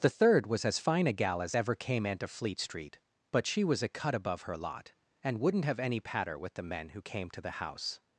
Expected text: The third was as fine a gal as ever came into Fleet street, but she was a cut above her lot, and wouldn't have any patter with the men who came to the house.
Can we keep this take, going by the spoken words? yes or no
yes